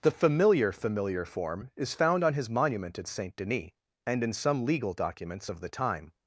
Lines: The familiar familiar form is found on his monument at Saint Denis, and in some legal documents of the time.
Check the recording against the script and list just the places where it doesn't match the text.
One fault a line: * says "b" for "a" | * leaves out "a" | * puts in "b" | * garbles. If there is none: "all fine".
all fine